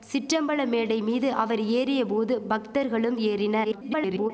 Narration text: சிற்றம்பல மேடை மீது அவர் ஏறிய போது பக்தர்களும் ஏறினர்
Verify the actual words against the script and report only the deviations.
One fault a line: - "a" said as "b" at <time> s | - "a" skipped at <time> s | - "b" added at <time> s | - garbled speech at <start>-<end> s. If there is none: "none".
- garbled speech at 3.6-4.3 s